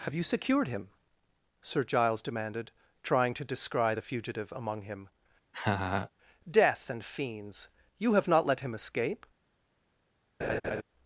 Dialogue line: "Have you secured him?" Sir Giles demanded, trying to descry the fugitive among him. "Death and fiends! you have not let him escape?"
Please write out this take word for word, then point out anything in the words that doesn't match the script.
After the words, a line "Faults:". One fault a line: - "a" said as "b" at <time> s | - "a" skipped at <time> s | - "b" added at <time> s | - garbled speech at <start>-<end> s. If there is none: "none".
"Have you secured him?" Sir Giles demanded, trying to descry the fugitive among him. "Death and fiends! you have not let him escape?"
Faults:
none